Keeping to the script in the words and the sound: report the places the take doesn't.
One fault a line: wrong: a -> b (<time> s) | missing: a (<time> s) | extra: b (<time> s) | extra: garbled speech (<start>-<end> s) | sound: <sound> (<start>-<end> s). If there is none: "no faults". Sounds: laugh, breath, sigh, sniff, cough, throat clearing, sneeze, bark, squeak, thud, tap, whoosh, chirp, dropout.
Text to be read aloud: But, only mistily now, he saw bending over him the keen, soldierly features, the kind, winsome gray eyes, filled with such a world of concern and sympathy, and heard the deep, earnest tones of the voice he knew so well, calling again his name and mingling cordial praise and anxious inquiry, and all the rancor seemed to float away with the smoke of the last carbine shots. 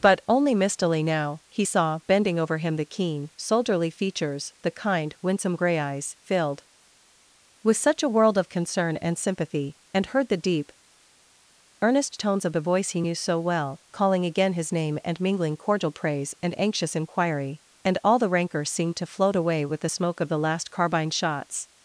no faults